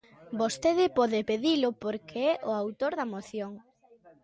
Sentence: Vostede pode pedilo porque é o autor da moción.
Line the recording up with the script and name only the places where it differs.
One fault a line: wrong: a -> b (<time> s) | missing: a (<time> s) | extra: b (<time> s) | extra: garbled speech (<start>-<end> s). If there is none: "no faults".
no faults